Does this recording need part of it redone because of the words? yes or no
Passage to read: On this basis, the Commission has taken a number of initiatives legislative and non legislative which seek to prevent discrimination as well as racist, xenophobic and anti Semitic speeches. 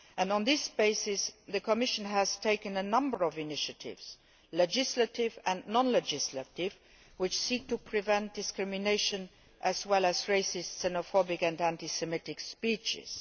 no